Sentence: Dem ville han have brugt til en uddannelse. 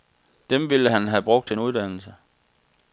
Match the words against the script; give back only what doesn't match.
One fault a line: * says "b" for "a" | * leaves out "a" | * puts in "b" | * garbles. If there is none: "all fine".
all fine